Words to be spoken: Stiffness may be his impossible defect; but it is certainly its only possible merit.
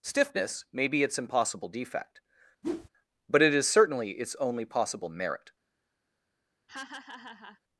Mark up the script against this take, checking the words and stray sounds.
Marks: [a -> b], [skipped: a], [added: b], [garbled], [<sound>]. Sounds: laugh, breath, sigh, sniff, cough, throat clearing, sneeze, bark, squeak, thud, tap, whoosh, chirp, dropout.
Stiffness may be [his -> its] impossible defect; [whoosh] but it is certainly its only possible merit. [laugh]